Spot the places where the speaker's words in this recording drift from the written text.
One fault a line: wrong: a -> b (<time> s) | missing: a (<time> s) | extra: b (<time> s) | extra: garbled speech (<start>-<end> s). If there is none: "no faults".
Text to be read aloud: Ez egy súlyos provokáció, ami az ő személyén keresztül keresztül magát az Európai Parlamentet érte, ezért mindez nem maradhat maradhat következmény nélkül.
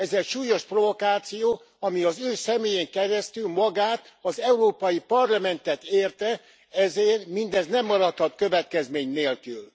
missing: keresztül (3.5 s)
missing: maradhat (8.3 s)